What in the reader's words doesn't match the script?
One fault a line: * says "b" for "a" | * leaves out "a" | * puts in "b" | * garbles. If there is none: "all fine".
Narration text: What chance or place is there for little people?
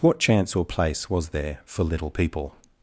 * says "was" for "is"